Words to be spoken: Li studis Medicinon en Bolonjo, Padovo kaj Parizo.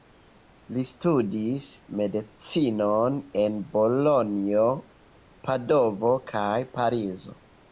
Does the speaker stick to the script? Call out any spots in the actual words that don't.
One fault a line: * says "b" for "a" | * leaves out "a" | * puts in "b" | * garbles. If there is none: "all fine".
all fine